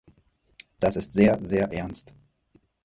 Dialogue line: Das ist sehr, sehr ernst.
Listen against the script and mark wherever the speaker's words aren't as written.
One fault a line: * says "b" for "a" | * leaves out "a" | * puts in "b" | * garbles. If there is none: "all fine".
all fine